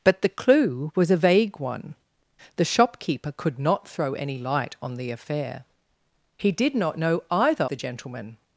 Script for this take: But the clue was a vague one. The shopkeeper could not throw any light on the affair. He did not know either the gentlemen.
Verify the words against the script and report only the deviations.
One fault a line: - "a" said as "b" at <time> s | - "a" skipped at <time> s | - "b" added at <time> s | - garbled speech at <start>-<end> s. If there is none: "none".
none